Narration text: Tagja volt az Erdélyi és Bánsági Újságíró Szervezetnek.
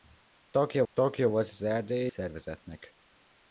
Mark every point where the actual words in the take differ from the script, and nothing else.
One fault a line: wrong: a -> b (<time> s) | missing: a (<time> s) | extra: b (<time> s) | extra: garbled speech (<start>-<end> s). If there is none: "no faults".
extra: tagja (0.9 s)
missing: és Bánsági Újságíró (2.1 s)